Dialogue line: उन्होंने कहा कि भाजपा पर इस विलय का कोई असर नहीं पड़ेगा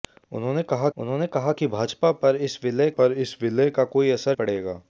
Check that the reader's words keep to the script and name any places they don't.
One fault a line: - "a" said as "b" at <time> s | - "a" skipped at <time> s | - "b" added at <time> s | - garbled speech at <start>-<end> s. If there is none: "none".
- "उन्होंने कहा" added at 1.0 s
- "पर इस विलय" added at 3.0 s
- "नहीं" skipped at 4.4 s